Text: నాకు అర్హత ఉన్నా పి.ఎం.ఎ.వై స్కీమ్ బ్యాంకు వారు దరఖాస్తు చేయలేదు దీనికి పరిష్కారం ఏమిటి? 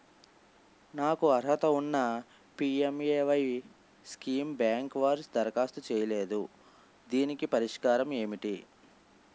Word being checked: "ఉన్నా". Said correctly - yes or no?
yes